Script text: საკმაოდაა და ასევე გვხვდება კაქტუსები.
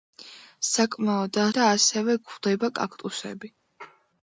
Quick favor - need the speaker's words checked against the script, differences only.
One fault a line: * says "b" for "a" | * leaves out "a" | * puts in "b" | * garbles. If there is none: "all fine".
all fine